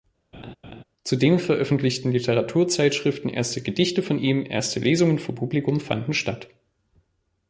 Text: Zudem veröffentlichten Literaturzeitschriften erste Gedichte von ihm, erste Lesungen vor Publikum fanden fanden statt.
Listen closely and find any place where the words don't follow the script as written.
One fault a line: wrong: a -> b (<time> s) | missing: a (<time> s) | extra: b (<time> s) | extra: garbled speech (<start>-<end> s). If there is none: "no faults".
missing: fanden (6.1 s)